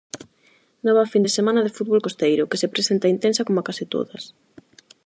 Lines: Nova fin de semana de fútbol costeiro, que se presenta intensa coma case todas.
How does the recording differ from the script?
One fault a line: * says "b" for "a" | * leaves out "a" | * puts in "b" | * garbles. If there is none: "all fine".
all fine